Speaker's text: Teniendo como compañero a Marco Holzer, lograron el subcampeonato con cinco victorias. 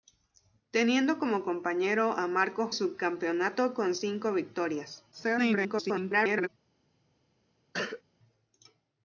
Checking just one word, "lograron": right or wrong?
wrong